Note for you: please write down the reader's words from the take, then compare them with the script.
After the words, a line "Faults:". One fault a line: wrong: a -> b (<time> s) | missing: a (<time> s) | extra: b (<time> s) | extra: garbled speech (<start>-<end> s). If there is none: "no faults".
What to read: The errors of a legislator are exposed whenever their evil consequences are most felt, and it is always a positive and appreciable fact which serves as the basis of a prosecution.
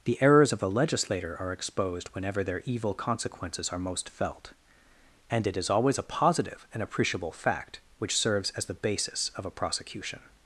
The errors of a legislator are exposed whenever their evil consequences are most felt, and it is always a positive and appreciable fact which serves as the basis of a prosecution.
Faults:
no faults